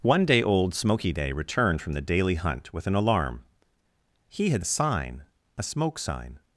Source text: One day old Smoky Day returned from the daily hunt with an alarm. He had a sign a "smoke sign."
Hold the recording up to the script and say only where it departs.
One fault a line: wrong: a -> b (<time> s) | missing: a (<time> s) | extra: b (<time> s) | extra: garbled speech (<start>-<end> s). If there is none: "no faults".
no faults